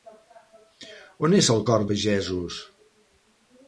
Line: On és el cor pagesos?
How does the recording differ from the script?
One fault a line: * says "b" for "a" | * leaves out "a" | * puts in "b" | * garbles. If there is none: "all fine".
all fine